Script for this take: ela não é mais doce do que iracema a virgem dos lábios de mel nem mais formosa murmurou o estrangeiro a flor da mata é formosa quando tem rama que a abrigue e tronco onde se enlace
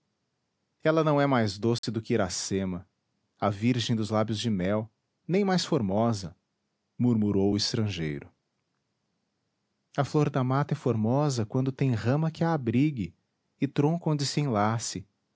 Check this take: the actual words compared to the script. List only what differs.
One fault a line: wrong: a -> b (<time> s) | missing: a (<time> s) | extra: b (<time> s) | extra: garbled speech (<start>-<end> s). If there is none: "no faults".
no faults